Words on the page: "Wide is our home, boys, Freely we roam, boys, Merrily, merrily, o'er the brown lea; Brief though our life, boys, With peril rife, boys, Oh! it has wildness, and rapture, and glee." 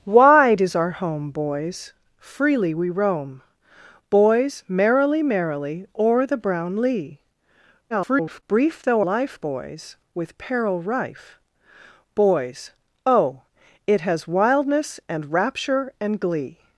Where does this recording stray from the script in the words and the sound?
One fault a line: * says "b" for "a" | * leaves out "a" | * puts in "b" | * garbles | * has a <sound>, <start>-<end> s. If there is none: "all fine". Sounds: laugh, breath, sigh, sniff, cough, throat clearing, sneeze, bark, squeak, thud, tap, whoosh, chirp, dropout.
* garbles
* leaves out "our"